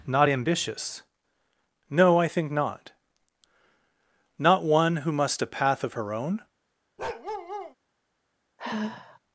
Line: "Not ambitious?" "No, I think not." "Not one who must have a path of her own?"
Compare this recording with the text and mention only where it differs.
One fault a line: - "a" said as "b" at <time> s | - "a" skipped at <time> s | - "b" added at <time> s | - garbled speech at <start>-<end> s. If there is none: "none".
- "have" skipped at 5.4 s